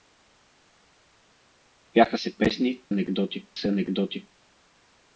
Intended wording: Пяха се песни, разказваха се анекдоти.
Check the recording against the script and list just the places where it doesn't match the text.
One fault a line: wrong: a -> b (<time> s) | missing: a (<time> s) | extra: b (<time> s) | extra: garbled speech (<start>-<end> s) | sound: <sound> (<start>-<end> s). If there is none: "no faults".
wrong: разказваха -> анекдоти (2.9 s)